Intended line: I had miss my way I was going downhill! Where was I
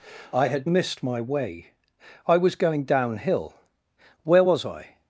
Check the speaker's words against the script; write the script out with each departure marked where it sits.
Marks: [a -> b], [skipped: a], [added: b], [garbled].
I had [miss -> missed] my way I was going downhill! Where was I